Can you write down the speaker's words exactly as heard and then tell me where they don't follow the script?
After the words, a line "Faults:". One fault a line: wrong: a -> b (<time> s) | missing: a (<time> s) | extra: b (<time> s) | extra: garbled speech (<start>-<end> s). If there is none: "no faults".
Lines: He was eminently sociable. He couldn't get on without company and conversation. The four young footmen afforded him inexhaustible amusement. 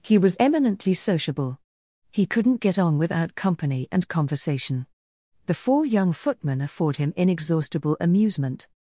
He was eminently sociable. He couldn't get on without company and conversation. The four young footmen afford him inexhaustible amusement.
Faults:
wrong: afforded -> afford (6.6 s)